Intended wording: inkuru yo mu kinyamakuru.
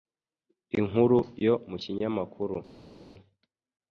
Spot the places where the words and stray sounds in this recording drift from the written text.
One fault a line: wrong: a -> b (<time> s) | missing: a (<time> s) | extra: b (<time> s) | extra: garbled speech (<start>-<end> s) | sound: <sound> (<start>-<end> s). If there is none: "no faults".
no faults